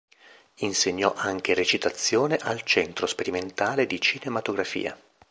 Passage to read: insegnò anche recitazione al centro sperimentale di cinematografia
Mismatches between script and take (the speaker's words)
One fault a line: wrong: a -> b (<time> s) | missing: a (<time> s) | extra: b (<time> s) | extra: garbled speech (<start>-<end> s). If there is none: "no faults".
no faults